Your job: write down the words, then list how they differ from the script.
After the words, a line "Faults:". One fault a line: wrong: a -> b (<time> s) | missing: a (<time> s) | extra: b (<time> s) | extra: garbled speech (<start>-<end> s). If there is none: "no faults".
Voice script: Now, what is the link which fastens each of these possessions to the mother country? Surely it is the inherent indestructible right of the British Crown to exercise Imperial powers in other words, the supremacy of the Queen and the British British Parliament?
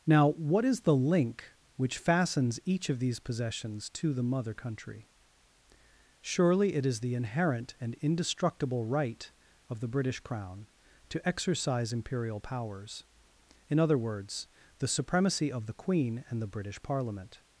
Now, what is the link which fastens each of these possessions to the mother country? Surely it is the inherent and indestructible right of the British Crown to exercise Imperial powers in other words, the supremacy of the Queen and the British Parliament?
Faults:
extra: and (7.8 s)
missing: British (16.8 s)